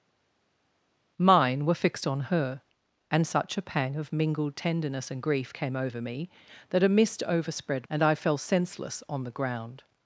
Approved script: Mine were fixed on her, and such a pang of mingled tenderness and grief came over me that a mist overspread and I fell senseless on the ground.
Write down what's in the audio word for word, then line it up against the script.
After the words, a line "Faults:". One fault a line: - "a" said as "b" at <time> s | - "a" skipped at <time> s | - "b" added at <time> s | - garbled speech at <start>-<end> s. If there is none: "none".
Mine were fixed on her, and such a pang of mingled tenderness and grief came over me that a mist overspread and I fell senseless on the ground.
Faults:
none